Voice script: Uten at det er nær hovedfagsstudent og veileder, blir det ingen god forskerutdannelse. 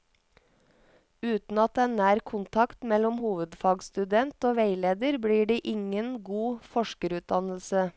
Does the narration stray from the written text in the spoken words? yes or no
yes